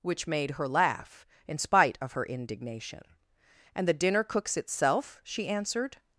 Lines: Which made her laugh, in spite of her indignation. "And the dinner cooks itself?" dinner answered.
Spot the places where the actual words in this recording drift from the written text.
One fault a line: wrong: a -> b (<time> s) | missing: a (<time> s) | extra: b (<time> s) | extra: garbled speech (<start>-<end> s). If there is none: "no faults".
wrong: dinner -> she (5.2 s)